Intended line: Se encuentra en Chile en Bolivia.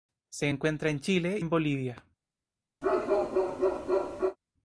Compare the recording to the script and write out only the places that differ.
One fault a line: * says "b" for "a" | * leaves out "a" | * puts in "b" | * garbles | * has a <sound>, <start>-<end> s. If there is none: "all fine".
* has a bark, 2.8-4.4 s